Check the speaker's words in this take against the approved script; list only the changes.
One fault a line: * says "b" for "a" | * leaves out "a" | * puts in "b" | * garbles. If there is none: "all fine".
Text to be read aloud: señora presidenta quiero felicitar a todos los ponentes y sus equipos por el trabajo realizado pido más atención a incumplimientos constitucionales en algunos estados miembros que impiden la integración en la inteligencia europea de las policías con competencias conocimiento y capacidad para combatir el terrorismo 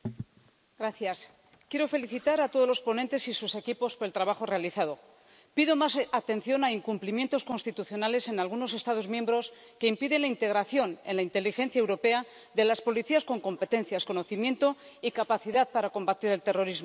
all fine